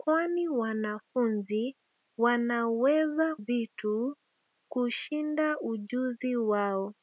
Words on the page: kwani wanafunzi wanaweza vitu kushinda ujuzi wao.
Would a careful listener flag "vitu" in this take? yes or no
no